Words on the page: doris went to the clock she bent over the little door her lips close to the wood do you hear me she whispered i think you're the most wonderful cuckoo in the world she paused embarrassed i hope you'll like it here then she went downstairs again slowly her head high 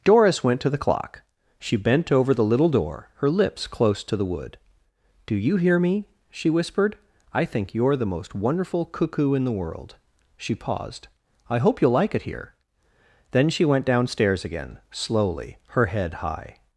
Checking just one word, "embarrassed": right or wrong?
wrong